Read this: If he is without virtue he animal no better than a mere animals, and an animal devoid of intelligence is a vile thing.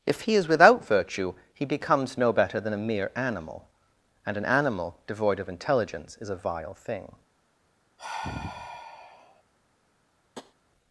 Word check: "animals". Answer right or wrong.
wrong